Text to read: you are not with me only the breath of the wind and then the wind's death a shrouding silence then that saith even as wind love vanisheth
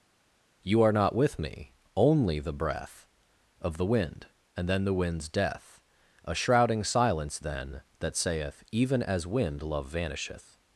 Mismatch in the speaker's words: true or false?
false